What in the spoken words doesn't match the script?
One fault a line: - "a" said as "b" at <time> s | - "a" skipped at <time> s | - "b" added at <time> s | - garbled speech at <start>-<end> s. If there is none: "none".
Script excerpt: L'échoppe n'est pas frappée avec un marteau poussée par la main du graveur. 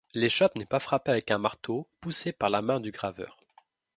none